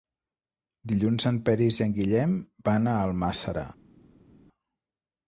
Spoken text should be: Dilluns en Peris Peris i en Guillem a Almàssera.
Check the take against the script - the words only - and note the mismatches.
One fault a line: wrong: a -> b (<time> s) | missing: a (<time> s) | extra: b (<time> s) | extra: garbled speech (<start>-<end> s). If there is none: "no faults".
missing: Peris (1.8 s)
extra: van (2.7 s)